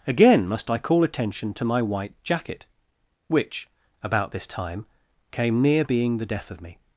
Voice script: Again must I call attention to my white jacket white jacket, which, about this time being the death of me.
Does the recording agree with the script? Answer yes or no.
no